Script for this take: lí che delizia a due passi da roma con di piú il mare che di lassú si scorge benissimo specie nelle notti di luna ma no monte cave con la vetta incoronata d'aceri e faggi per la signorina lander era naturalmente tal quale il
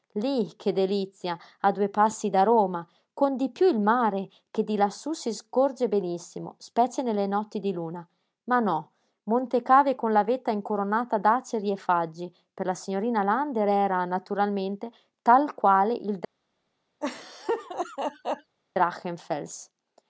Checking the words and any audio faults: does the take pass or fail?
fail